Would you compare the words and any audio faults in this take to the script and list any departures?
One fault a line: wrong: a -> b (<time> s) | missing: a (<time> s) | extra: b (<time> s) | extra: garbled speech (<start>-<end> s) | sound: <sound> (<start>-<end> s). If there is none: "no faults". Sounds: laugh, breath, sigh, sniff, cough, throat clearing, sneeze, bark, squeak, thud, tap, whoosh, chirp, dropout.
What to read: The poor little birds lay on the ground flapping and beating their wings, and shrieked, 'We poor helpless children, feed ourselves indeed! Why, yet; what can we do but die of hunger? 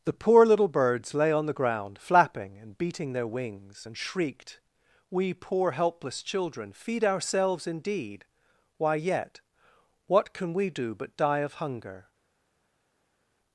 no faults